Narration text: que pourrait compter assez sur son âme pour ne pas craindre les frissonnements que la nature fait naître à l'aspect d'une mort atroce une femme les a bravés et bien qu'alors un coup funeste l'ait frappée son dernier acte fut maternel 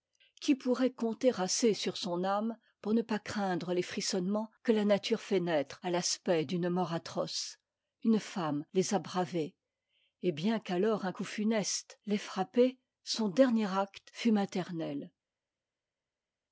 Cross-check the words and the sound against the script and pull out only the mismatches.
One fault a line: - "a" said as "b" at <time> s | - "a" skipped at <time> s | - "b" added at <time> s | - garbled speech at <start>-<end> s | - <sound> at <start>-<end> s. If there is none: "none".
- "que" said as "qui" at 0.4 s